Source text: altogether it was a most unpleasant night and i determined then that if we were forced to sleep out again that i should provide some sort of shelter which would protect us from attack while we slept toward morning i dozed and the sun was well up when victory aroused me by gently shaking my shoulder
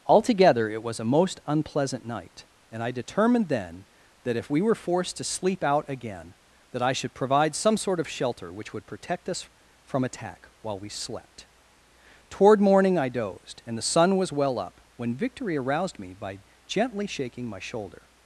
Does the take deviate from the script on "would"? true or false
false